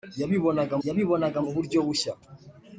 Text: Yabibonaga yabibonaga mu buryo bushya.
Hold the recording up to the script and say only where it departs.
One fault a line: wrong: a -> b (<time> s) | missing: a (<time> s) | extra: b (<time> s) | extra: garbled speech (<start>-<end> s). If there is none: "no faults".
no faults